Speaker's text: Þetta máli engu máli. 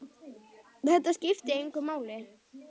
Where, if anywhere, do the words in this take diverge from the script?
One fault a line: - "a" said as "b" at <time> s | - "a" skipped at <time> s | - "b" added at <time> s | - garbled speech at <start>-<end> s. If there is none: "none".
- "máli" said as "skipti" at 1.2 s